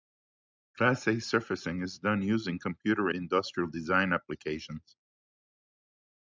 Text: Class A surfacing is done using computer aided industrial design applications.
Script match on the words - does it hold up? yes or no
no